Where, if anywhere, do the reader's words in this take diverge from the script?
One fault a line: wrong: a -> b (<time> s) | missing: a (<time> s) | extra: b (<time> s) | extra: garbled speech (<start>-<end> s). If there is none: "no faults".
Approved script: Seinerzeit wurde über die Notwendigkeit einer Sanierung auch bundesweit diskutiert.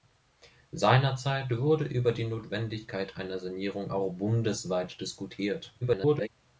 extra: garbled speech (5.8-6.3 s)